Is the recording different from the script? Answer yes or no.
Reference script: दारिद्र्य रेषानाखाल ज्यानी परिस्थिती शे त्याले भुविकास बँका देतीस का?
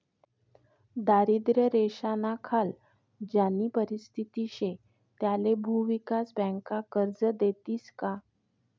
yes